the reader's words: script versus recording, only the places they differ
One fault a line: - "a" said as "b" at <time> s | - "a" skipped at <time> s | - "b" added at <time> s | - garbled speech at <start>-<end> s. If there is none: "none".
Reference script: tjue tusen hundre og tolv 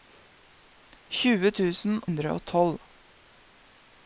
none